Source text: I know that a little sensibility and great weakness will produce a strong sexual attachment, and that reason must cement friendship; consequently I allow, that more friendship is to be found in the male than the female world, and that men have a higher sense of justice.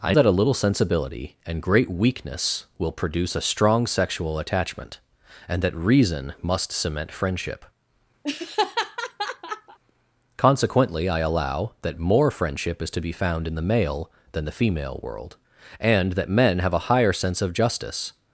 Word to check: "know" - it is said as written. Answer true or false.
false